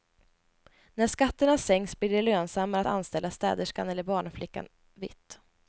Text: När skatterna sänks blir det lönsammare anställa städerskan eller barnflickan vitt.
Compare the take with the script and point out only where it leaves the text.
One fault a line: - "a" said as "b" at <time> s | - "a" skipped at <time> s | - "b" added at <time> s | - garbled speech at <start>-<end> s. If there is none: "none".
none